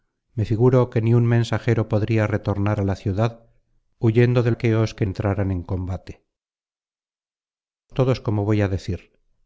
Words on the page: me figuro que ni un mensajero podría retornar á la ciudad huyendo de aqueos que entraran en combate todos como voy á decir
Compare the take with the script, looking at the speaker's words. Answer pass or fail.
pass